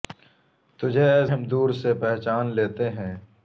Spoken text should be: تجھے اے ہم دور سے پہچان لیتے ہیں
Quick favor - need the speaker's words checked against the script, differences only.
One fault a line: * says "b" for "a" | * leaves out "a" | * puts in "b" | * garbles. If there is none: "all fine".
all fine